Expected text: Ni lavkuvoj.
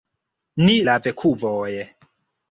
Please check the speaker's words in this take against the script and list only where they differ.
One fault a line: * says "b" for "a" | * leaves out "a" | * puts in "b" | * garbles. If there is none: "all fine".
all fine